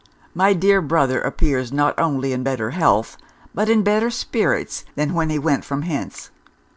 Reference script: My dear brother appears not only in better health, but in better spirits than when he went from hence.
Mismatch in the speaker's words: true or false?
false